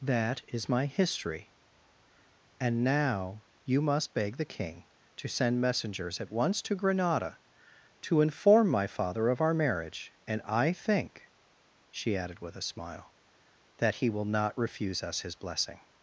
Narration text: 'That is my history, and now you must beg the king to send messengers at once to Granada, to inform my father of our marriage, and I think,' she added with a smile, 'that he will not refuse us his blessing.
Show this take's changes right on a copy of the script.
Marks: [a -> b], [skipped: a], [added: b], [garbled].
'That is my history, and now you must beg the king to send messengers at once to Granada, to inform my father of our marriage, and I think,' she added with a smile, 'that he will not refuse us his blessing.